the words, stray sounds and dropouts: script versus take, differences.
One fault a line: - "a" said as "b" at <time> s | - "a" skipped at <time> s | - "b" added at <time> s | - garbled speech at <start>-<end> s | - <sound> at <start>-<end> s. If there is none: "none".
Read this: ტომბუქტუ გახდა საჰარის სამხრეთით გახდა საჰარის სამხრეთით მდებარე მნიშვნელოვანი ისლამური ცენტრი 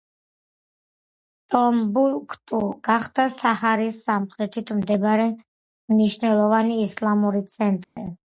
- "გახდა საჰარის სამხრეთით" skipped at 4.7 s
- dropout at 7.8-8.0 s